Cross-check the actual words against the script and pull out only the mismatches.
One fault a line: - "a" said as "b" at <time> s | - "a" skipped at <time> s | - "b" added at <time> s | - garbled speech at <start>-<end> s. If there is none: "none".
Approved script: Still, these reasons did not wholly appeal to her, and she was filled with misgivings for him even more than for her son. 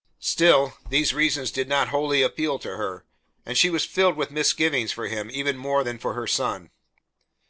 none